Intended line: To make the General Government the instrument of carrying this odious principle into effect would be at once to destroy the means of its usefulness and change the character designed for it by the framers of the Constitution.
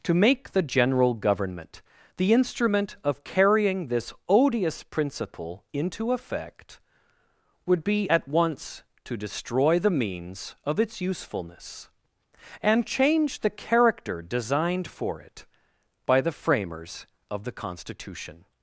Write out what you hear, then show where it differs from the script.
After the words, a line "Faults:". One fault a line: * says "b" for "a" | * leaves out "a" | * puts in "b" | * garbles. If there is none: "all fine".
To make the General Government the instrument of carrying this odious principle into effect would be at once to destroy the means of its usefulness and change the character designed for it by the framers of the Constitution.
Faults:
all fine